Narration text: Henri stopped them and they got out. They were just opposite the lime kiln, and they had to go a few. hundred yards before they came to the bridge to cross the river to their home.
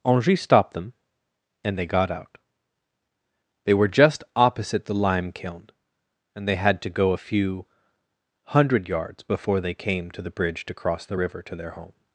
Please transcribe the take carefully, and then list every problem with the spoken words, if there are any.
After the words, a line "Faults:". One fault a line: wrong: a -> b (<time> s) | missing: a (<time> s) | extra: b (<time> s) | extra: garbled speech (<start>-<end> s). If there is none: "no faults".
Henri stopped them and they got out. They were just opposite the lime kiln, and they had to go a few. hundred yards before they came to the bridge to cross the river to their home.
Faults:
no faults